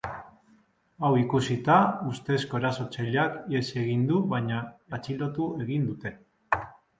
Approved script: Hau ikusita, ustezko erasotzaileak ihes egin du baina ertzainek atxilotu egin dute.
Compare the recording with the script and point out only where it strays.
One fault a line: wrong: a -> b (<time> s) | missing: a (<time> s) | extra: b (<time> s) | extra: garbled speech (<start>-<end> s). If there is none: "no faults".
missing: ertzainek (4.6 s)